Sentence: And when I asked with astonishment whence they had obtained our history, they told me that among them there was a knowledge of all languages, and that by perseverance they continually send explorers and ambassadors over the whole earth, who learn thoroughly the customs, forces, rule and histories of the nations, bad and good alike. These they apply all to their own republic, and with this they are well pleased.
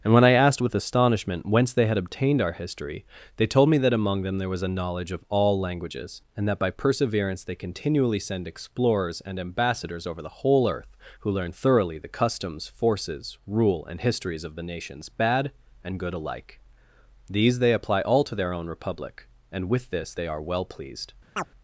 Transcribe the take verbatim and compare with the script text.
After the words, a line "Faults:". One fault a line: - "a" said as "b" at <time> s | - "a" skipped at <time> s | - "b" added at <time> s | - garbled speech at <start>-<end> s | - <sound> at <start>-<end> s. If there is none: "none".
And when I asked with astonishment whence they had obtained our history, they told me that among them there was a knowledge of all languages, and that by perseverance they continually send explorers and ambassadors over the whole earth, who learn thoroughly the customs, forces, rule and histories of the nations, bad and good alike. These they apply all to their own republic, and with this they are well pleased.
Faults:
- chirp at 21.4-21.5 s